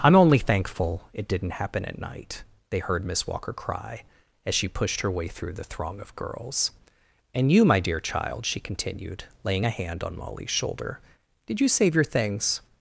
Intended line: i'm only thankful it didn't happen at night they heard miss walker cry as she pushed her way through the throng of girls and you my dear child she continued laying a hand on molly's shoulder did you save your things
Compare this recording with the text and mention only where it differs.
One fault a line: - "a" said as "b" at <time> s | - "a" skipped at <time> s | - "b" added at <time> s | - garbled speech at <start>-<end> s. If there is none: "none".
none